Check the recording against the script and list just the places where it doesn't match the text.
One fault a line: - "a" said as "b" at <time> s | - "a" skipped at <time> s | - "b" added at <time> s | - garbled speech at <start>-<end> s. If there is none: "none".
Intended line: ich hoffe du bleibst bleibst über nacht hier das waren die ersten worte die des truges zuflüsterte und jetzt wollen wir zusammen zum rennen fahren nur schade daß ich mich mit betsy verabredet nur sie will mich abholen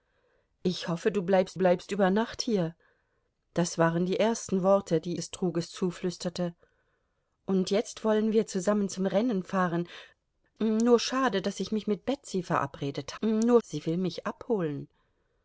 none